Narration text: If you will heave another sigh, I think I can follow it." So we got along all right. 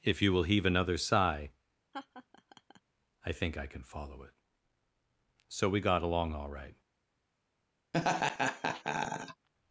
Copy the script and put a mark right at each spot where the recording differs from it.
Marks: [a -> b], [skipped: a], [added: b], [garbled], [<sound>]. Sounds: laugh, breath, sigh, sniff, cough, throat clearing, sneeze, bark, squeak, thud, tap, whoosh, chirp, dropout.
If you will heave another sigh, [laugh] I think I can follow it." So we got along all right. [laugh]